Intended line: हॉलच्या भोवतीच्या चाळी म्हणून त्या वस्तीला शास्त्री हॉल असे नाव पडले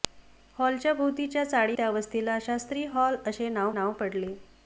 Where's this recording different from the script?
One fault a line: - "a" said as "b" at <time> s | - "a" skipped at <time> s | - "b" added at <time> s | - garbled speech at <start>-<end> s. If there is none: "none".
- "म्हणून" skipped at 1.8 s
- "नाव" added at 3.7 s